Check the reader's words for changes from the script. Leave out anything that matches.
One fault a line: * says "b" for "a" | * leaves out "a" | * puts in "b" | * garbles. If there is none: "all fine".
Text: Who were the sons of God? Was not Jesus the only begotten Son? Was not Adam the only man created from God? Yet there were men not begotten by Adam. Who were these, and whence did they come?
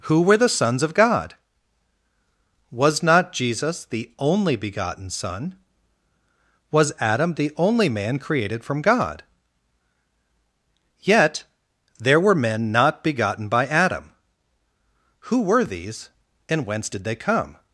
* leaves out "not"